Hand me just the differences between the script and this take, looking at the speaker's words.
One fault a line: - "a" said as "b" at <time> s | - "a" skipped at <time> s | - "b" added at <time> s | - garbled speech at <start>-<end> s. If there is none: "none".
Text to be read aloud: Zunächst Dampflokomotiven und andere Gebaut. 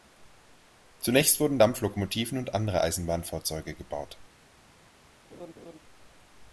- "wurden" added at 1.4 s
- "Eisenbahnfahrzeuge" added at 2.8 s